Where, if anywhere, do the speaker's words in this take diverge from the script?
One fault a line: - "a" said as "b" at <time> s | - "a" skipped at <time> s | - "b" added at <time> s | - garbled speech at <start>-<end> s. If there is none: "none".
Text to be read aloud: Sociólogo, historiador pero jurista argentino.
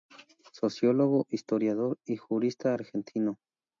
- "pero" said as "y" at 2.0 s